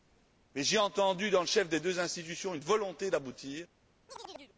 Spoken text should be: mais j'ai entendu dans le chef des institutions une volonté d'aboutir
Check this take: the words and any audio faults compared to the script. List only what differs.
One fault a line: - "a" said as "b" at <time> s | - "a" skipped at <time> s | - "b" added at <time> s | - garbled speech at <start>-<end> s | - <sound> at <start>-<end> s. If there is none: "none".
- "deux" added at 1.8 s
- chirp at 4.1-4.5 s